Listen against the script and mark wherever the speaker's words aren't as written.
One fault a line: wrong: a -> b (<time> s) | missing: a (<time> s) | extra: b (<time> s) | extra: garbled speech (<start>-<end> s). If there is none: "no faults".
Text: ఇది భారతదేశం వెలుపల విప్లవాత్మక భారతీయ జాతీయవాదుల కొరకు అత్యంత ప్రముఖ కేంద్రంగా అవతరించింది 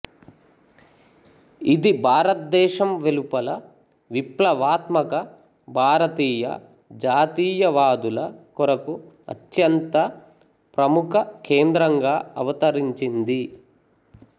no faults